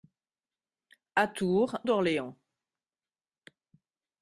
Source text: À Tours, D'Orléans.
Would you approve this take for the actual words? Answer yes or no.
yes